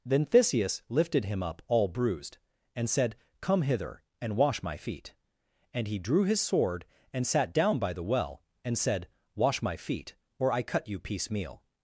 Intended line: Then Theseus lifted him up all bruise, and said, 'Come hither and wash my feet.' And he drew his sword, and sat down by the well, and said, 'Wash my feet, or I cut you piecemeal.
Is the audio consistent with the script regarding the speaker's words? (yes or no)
no